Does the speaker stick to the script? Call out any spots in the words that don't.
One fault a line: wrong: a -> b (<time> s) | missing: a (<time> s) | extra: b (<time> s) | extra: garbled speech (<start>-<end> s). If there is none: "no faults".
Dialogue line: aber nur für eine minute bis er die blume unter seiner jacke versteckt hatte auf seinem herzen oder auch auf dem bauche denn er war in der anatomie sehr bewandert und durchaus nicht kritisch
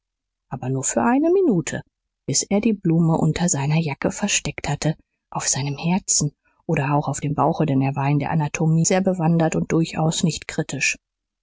no faults